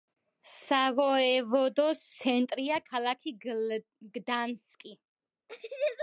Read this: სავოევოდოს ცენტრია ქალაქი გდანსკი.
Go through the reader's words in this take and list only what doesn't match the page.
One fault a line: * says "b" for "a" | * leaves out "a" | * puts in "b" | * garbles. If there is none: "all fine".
all fine